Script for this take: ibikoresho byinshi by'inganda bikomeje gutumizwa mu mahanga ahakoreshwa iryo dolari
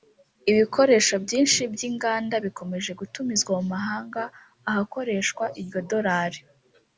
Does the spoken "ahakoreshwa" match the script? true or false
true